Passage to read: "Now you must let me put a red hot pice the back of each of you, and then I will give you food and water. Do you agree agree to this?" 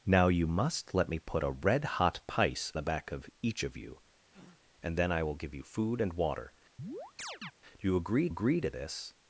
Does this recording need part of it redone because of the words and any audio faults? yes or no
yes